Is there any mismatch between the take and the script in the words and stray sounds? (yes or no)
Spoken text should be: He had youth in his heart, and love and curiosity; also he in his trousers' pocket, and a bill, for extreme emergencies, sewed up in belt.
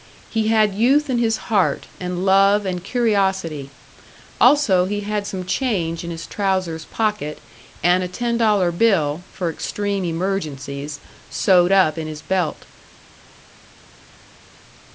yes